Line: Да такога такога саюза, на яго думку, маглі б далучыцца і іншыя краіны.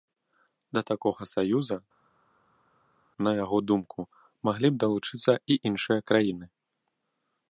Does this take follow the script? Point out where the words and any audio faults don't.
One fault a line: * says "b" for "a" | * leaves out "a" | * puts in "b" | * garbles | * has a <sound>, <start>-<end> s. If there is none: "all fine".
* leaves out "такога"